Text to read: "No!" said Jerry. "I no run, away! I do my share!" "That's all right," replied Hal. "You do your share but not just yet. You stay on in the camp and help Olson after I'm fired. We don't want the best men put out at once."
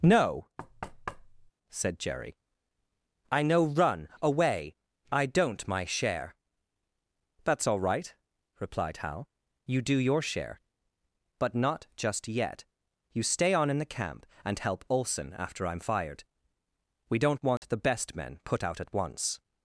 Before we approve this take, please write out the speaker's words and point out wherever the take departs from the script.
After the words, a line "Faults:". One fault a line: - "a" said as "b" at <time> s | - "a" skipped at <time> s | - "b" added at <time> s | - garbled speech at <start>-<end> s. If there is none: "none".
"No!" said Jerry. "I no run, away! I don't my share!" "That's all right," replied Hal. "You do your share but not just yet. You stay on in the camp and help Olson after I'm fired. We don't want the best men put out at once."
Faults:
- "do" said as "don't" at 5.2 s